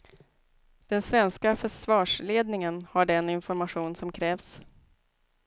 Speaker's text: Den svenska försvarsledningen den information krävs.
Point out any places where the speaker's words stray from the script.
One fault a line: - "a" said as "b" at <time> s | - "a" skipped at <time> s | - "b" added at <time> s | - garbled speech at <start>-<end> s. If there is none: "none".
- "har" added at 2.9 s
- "som" added at 3.9 s